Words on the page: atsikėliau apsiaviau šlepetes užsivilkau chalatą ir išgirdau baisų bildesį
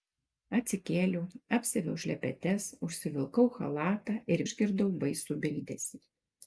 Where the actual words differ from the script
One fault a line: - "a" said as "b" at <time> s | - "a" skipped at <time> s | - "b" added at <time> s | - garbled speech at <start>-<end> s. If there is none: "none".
none